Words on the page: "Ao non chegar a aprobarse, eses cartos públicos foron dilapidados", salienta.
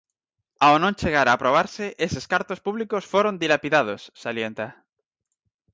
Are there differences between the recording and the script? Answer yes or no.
no